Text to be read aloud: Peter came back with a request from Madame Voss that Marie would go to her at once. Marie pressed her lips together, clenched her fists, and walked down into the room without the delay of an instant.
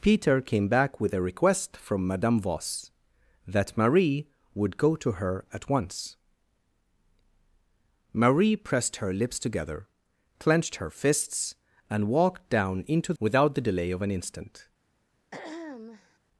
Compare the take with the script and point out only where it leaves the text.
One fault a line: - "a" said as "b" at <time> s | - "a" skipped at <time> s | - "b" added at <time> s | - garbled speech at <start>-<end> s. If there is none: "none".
- "the room" skipped at 13.1 s